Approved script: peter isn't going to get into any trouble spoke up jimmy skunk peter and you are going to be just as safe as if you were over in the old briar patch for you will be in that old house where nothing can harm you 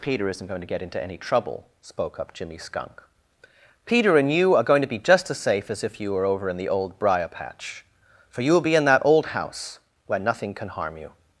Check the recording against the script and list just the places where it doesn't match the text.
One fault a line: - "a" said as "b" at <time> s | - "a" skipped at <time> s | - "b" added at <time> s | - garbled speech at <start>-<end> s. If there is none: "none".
none